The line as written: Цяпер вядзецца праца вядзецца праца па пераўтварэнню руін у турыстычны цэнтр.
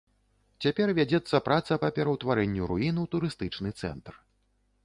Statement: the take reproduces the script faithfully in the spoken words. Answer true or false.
false